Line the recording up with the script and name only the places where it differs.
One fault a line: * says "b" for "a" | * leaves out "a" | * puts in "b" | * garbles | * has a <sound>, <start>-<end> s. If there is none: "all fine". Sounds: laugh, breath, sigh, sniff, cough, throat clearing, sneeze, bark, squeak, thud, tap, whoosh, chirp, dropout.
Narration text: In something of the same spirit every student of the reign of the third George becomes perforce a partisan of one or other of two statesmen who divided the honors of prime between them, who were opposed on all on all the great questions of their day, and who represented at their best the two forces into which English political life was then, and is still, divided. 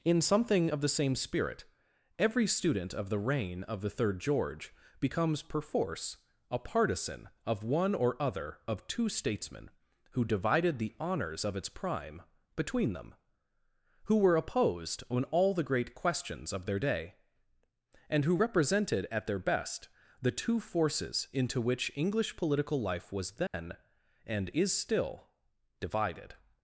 * puts in "its"
* leaves out "on all"
* has a dropout, 23.5-23.5 s